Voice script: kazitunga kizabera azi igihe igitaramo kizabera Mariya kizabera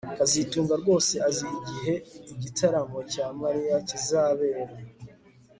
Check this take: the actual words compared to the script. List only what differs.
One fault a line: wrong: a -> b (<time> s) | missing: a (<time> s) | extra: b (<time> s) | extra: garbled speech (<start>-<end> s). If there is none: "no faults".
wrong: kizabera -> rwose (0.8 s)
wrong: kizabera -> cya (3.1 s)